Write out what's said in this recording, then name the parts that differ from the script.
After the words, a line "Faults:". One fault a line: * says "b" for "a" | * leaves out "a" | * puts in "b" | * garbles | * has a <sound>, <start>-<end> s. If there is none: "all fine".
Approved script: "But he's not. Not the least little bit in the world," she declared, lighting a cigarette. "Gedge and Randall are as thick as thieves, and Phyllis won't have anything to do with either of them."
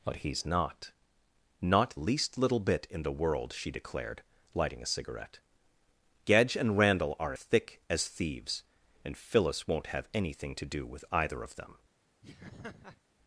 "But he's not. Not least little bit in the world," she declared, lighting a cigarette. "Gedge and Randall are thick as thieves, and Phyllis won't have anything to do with either of them."
Faults:
* leaves out "the"
* leaves out "as"
* has a laugh, 12.2-13.0 s